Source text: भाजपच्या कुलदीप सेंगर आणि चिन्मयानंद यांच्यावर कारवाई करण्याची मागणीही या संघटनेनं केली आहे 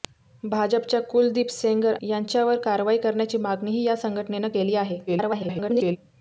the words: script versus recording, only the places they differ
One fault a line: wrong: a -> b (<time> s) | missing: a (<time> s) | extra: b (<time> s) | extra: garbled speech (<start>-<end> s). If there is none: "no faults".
missing: आणि चिन्मयानंद (1.9 s)
extra: garbled speech (5.1-6.0 s)